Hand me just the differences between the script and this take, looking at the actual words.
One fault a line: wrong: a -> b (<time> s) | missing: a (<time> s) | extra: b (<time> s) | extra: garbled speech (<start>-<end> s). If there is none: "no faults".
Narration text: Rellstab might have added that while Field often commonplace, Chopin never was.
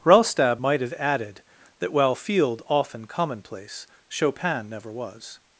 no faults